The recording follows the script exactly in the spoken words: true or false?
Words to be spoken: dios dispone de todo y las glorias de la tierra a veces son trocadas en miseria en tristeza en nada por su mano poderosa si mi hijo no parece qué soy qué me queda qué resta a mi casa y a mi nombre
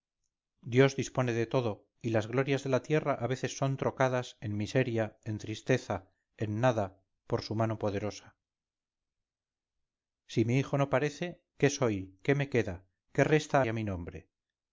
false